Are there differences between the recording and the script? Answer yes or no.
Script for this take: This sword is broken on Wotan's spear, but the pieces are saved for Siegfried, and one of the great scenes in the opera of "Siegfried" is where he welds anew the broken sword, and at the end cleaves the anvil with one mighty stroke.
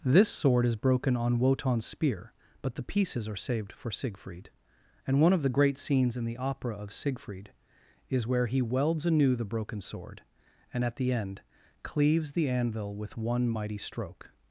no